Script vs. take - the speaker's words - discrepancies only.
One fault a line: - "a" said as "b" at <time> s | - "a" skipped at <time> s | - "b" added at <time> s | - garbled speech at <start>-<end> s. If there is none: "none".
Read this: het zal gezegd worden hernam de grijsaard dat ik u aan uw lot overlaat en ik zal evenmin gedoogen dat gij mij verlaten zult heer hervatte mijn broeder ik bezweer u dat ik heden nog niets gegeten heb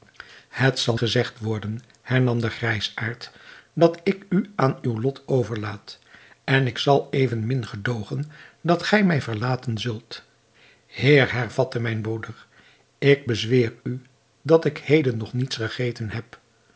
none